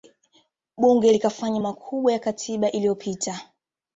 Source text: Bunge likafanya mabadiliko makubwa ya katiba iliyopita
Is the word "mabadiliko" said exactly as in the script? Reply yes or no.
no